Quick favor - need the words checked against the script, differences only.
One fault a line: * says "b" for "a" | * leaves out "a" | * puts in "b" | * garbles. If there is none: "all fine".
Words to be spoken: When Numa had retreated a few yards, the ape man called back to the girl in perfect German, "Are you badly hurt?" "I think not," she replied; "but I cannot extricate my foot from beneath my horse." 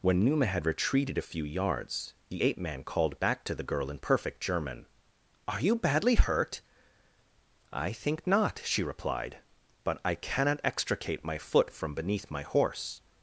all fine